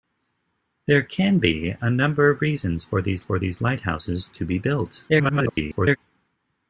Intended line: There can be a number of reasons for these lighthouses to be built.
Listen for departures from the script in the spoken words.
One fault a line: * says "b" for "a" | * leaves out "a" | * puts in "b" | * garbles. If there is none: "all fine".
* puts in "for these"
* garbles